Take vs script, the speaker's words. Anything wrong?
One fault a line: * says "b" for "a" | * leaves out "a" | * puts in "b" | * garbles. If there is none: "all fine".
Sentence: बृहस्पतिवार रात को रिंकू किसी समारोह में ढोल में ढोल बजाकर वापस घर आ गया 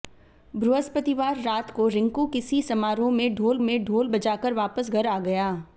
all fine